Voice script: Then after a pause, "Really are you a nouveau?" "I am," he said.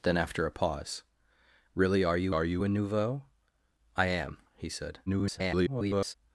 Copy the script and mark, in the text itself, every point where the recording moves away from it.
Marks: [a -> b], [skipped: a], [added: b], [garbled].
Then after a pause, "Really are you [added: are you] a nouveau?" "I am," he said. [garbled]